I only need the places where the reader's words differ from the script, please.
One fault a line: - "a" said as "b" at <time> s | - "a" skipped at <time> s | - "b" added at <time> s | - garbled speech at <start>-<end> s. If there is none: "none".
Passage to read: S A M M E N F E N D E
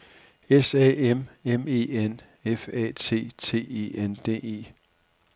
- "A T T" added at 2.7 s